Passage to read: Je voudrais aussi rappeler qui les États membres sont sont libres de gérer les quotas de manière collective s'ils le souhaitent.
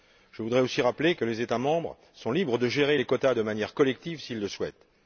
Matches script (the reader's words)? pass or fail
fail